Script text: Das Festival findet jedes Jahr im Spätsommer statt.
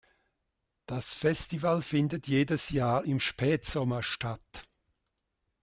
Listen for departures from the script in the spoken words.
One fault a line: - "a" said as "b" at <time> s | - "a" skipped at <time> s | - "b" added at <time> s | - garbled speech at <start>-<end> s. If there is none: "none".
none